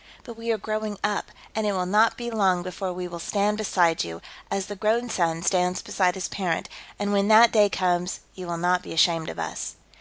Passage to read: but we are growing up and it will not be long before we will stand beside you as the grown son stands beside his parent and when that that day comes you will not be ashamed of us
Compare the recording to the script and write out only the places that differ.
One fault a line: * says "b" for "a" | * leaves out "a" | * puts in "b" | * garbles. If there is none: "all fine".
* leaves out "that"